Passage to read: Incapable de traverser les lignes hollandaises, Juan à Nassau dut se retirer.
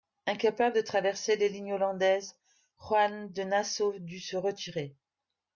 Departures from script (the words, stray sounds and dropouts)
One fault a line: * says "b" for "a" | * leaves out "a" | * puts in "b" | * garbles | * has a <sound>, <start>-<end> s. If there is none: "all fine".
* says "de" for "à"